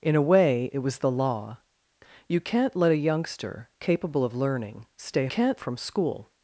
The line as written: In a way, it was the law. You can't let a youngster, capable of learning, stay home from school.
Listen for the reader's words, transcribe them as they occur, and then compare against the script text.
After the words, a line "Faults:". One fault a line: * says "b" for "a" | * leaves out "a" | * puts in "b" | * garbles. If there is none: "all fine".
In a way, it was the law. You can't let a youngster, capable of learning, stay can't from school.
Faults:
* says "can't" for "home"